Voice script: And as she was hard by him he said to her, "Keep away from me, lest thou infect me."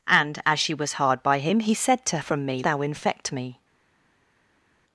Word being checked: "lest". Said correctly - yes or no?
no